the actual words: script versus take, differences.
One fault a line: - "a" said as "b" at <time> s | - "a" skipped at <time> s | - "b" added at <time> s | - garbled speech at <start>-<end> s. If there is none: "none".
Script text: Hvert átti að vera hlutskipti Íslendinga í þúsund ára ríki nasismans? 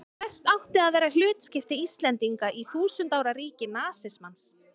none